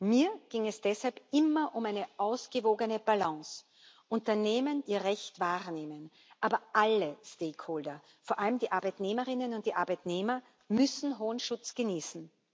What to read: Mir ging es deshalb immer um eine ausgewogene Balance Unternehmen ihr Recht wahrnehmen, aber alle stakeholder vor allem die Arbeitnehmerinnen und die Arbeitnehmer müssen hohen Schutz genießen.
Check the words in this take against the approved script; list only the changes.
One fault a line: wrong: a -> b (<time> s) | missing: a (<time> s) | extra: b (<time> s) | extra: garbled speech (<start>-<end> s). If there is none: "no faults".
no faults